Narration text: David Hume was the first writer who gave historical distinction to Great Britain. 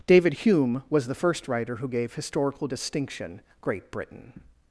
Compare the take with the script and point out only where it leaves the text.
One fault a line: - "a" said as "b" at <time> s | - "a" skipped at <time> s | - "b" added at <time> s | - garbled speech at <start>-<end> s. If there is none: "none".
- "to" skipped at 3.4 s